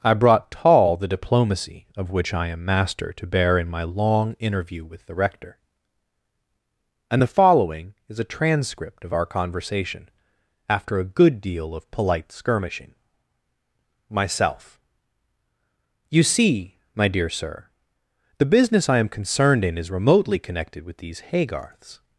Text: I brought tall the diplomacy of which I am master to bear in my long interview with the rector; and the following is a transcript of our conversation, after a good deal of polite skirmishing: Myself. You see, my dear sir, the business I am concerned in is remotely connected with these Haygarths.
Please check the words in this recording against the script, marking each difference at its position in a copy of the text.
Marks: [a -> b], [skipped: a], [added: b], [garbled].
I brought tall the diplomacy of which I am master to bear in my long interview with the rector; and the following is a transcript of our conversation, after a good deal of polite skirmishing: Myself. You see, my dear sir, the business I am concerned in is remotely connected with these Haygarths.